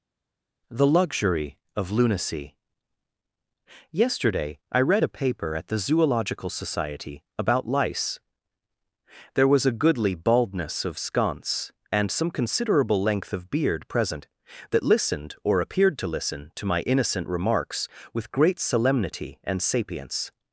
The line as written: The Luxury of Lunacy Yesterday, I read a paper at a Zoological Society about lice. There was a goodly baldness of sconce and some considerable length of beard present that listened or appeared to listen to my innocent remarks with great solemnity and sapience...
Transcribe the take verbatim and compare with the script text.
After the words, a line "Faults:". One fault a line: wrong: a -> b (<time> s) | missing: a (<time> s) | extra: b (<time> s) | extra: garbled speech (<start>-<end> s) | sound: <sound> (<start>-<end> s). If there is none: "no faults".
The Luxury of Lunacy Yesterday, I read a paper at the Zoological Society about lice. There was a goodly baldness of sconce and some considerable length of beard present that listened or appeared to listen to my innocent remarks with great solemnity and sapience...
Faults:
wrong: a -> the (5.7 s)